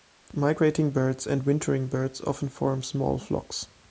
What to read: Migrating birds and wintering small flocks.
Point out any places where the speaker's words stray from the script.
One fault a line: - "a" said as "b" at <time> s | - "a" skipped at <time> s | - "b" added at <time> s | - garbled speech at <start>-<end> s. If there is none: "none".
- "birds often form" added at 1.9 s